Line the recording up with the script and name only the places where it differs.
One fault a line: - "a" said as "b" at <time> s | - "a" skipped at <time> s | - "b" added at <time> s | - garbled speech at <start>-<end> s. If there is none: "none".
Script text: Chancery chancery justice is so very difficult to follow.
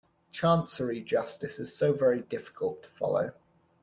- "chancery" skipped at 1.0 s